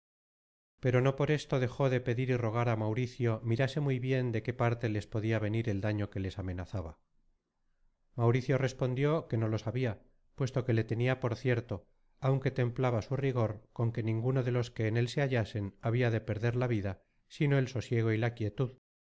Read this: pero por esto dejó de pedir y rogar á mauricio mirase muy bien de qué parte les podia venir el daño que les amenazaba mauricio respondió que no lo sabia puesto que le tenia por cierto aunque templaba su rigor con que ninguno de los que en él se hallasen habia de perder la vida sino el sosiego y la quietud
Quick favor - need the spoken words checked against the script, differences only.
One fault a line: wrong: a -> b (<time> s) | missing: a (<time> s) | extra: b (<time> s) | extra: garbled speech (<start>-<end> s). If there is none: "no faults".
extra: no (1.0 s)